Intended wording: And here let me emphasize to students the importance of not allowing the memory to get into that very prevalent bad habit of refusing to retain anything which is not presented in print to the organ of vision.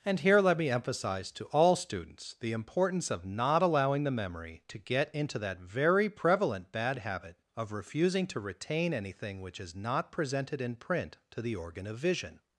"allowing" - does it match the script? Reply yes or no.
yes